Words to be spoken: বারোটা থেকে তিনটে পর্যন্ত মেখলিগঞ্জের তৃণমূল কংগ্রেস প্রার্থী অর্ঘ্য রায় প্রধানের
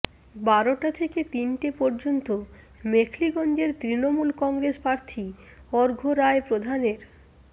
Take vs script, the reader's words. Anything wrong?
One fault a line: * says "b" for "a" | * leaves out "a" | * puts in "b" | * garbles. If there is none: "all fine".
all fine